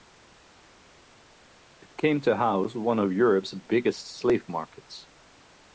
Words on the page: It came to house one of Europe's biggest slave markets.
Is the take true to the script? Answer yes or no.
yes